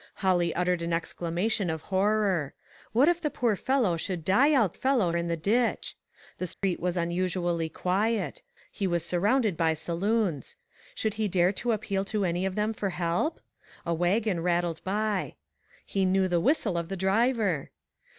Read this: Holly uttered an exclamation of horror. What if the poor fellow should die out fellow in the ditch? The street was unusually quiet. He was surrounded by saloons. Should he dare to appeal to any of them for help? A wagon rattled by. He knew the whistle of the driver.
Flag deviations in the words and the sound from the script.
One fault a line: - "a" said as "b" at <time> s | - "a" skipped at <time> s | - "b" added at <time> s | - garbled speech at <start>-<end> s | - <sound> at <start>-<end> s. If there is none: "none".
- dropout at 6.5-6.6 s